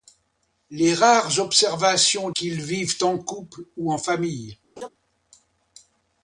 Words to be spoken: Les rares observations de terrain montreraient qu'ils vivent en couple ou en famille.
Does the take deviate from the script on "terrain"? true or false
true